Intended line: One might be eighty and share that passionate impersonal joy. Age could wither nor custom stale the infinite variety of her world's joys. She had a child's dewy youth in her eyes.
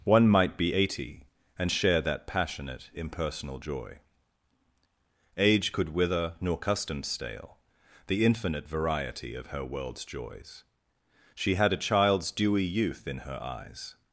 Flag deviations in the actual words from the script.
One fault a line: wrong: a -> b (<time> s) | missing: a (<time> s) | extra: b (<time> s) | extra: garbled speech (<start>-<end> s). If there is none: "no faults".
no faults